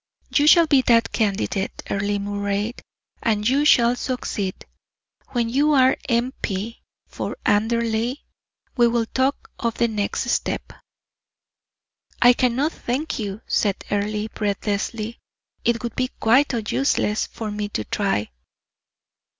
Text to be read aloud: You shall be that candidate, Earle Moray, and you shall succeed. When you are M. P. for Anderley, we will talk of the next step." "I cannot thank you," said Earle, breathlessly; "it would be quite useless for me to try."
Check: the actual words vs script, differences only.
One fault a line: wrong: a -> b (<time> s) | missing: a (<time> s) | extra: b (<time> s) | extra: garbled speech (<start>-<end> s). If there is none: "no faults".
no faults